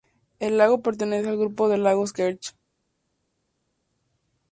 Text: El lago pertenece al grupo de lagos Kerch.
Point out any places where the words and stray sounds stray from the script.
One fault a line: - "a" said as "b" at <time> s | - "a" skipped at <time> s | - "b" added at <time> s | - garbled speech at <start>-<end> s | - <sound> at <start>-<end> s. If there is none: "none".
none